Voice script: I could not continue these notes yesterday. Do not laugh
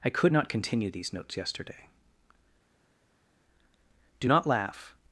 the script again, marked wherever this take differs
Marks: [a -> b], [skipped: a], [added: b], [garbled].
I could not continue these notes yesterday. Do not laugh